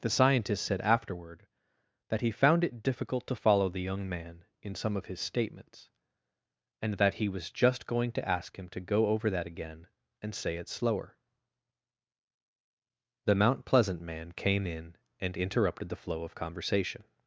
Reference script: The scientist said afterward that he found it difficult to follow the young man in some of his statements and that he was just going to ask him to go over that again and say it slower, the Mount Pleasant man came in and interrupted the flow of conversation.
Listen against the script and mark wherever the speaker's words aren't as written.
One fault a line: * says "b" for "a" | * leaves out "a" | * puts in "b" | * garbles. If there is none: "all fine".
all fine